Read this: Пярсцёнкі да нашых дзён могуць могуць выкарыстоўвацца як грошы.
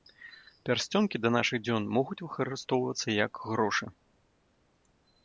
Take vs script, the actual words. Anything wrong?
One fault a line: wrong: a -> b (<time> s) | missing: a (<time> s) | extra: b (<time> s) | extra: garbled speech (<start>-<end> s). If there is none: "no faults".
missing: могуць (2.2 s)